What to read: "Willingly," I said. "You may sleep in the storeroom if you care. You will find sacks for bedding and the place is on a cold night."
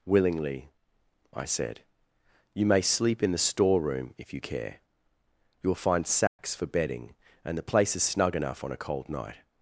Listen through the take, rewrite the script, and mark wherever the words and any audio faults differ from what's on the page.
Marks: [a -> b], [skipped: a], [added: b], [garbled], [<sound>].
"Willingly," I said. "You may sleep in the storeroom if you care. You will find sacks [dropout] for bedding and the place is [added: snug enough] on a cold night."